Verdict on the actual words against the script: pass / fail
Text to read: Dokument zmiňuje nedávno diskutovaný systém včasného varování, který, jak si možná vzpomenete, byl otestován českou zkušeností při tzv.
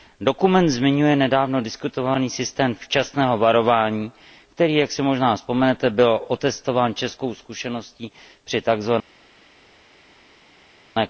pass